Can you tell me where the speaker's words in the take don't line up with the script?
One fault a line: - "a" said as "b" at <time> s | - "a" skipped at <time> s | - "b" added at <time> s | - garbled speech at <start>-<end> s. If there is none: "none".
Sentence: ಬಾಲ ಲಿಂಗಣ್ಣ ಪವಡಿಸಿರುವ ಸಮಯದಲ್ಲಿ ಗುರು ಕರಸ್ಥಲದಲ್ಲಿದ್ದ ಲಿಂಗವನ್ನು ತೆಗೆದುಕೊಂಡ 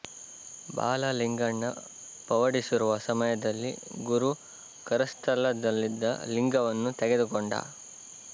none